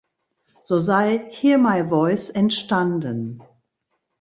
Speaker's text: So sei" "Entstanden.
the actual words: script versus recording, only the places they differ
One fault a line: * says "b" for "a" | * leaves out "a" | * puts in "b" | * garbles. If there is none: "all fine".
* puts in "Hear My Voice"